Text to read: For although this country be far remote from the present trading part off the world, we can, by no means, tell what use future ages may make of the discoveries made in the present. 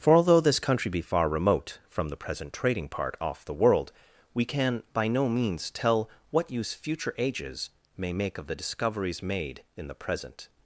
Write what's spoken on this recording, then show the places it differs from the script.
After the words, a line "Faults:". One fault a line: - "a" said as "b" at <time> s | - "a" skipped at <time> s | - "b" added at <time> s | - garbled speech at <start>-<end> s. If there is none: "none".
For although this country be far remote from the present trading part off the world, we can, by no means, tell what use future ages may make of the discoveries made in the present.
Faults:
none